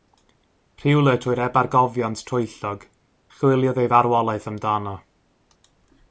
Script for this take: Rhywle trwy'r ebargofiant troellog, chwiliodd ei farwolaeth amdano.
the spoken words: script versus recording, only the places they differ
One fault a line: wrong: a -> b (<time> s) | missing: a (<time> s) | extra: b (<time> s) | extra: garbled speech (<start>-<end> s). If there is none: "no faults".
no faults